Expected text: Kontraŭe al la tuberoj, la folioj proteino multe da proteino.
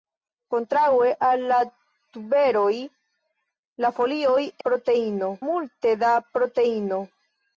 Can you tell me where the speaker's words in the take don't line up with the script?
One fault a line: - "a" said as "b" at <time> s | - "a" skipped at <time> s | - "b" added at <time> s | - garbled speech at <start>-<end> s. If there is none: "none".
none